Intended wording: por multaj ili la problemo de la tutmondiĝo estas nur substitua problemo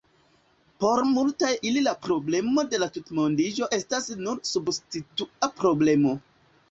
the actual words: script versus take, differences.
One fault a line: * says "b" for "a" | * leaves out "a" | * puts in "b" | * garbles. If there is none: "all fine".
all fine